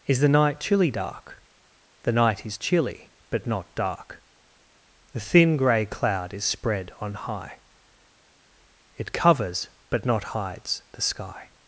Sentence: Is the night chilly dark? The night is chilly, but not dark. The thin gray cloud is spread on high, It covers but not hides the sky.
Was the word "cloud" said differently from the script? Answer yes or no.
no